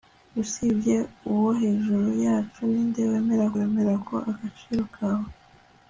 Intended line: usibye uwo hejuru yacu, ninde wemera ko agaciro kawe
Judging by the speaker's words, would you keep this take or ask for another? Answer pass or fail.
fail